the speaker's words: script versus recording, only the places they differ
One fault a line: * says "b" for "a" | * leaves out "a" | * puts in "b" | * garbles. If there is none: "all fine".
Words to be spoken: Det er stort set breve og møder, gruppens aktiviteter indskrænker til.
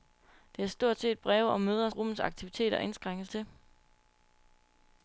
all fine